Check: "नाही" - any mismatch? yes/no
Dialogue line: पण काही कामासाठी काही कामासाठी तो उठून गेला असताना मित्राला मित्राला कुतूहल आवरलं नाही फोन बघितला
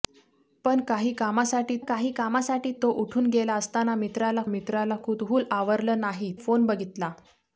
no